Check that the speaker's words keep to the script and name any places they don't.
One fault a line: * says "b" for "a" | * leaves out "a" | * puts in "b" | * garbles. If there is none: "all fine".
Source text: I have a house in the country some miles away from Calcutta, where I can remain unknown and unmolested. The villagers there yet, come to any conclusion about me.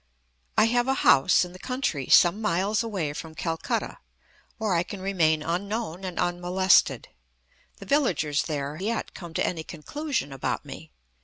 all fine